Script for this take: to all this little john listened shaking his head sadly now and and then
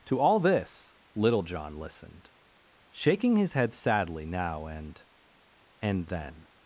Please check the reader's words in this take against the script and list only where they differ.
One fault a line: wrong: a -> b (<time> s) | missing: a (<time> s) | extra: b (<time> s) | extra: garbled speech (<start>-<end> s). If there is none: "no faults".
no faults